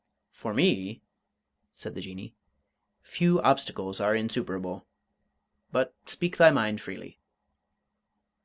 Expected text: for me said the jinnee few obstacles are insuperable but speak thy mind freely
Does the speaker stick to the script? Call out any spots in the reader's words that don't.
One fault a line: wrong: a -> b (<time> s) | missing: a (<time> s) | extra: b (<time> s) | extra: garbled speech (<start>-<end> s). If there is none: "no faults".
no faults